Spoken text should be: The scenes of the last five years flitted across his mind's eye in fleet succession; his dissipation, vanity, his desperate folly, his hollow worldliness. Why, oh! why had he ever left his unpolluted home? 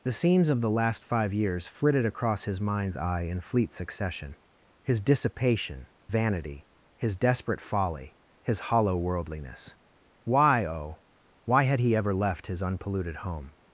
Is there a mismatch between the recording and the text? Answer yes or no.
no